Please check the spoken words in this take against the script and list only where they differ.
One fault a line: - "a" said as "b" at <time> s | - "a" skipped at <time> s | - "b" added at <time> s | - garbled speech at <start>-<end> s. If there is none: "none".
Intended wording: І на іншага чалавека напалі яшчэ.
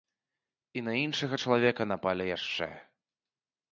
none